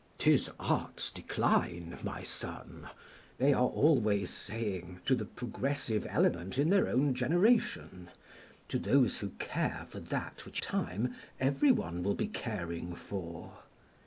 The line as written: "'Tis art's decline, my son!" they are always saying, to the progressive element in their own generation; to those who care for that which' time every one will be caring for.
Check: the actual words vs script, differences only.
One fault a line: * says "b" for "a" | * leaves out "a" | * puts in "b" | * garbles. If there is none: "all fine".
all fine